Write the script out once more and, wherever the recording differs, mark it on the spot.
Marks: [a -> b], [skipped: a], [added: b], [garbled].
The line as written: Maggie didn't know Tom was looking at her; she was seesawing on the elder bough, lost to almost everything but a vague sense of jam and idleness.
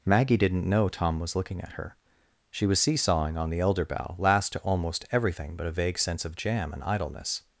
Maggie didn't know Tom was looking at her; she was seesawing on the elder bough, [lost -> last] to almost everything but a vague sense of jam and idleness.